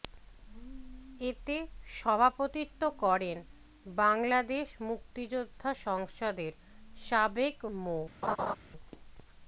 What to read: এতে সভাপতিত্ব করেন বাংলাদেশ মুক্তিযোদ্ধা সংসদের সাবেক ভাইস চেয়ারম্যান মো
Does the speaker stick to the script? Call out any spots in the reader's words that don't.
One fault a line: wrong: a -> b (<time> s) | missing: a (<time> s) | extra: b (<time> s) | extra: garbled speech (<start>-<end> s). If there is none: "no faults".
missing: ভাইস চেয়ারম্যান (7.5 s)